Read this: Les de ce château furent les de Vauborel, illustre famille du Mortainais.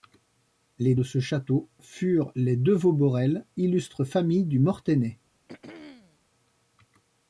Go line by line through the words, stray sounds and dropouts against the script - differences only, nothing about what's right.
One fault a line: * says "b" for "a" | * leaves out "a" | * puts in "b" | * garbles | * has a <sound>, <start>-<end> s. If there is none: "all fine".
* has a throat clearing, 5.5-6.2 s